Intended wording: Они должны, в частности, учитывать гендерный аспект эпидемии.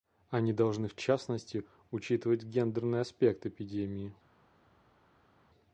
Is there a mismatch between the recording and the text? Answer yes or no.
no